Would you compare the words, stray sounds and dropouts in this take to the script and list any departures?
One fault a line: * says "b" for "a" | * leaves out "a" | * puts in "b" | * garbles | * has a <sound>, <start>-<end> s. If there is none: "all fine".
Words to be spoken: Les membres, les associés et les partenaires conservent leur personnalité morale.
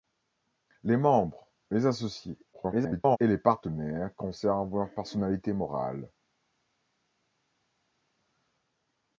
* garbles